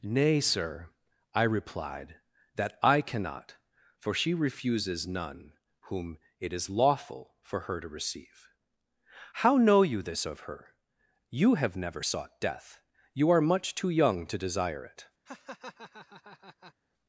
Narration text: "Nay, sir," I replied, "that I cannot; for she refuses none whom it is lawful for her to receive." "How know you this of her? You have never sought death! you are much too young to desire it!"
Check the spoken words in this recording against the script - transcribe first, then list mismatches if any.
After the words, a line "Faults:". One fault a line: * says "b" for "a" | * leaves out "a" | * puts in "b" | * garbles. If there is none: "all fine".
"Nay, sir," I replied, "that I cannot; for she refuses none whom it is lawful for her to receive." "How know you this of her? You have never sought death! you are much too young to desire it!"
Faults:
all fine